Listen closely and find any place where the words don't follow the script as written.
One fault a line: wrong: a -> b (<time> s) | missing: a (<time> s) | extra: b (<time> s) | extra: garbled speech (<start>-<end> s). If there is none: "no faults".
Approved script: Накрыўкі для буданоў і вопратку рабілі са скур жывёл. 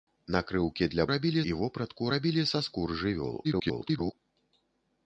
wrong: буданоў -> рабілі (1.1 s)
extra: garbled speech (3.4-4.1 s)